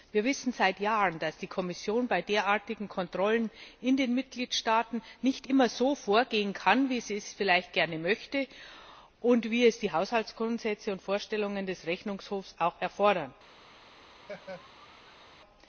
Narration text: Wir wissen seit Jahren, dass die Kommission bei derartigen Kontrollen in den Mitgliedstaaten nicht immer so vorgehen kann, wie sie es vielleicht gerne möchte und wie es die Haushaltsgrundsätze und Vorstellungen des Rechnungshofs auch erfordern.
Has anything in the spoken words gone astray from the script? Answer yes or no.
no